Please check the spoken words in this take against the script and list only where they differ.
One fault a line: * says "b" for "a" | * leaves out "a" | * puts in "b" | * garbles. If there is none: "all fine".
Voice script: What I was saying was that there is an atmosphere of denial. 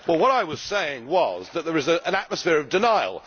all fine